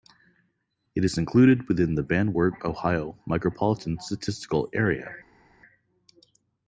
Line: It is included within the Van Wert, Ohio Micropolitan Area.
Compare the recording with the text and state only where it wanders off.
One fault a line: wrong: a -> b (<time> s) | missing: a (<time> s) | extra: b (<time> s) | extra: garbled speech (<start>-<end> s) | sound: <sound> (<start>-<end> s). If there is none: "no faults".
extra: Statistical (4.0 s)